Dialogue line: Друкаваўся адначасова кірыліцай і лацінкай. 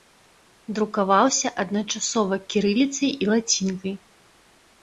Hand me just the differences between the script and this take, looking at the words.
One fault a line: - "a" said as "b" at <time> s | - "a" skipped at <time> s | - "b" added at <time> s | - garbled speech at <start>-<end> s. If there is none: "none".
none